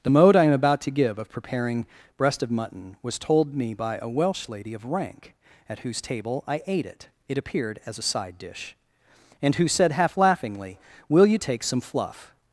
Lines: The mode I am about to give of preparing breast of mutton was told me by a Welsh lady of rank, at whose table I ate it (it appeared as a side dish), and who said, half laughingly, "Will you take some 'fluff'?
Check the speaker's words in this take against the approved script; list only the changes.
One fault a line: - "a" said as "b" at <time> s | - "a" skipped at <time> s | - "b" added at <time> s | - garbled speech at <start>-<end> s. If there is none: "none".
none